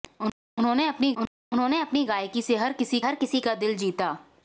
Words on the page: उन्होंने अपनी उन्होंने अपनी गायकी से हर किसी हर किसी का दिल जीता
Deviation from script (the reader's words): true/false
false